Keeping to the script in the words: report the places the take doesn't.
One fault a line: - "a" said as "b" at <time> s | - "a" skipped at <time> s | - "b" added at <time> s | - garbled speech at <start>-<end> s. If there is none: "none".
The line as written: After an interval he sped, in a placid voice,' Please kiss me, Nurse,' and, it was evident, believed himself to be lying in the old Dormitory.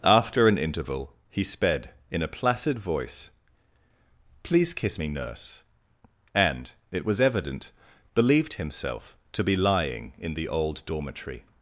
none